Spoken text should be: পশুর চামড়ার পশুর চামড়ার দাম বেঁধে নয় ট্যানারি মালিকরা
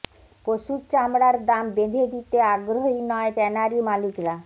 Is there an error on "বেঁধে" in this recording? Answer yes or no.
yes